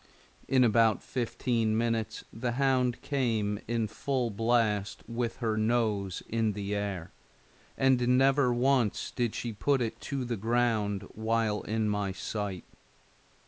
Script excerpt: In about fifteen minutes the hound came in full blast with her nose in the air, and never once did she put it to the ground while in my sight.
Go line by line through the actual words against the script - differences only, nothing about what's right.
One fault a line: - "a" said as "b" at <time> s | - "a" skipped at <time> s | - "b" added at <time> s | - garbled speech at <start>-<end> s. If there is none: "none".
none